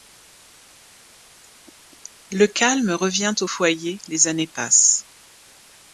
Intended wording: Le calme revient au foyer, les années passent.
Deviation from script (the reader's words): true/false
false